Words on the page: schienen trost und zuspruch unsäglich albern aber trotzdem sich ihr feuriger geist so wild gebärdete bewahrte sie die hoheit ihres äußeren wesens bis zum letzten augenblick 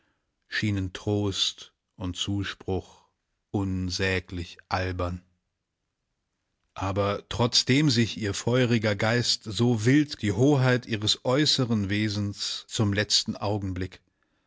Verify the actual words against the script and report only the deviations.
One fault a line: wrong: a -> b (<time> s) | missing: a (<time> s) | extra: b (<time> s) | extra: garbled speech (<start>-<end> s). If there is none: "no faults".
missing: gebärdete bewahrte sie (10.2 s)
missing: bis (12.7 s)